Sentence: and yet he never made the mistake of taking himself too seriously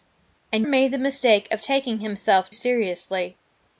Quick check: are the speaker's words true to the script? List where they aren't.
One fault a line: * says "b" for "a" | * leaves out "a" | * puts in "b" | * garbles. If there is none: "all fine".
* leaves out "yet he never"
* leaves out "too"